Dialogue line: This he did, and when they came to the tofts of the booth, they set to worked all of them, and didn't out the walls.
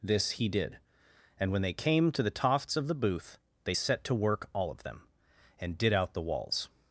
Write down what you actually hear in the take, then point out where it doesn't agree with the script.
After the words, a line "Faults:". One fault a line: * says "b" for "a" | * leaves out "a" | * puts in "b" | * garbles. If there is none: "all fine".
This he did, and when they came to the tofts of the booth, they set to work all of them, and did out the walls.
Faults:
* says "work" for "worked"
* says "did" for "didn't"